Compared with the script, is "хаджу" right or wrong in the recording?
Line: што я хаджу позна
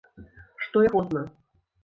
wrong